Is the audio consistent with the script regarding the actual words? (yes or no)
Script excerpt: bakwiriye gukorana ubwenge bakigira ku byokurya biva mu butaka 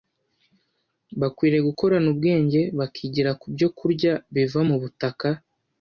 yes